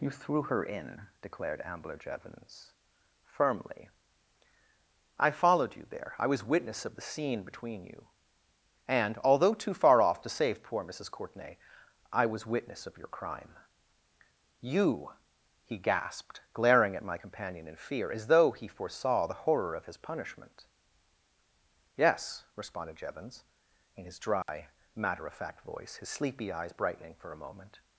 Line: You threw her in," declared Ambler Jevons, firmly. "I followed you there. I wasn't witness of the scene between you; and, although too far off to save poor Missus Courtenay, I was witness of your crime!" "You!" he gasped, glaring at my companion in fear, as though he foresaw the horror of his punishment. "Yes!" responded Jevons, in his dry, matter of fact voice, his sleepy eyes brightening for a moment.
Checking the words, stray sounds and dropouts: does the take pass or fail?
fail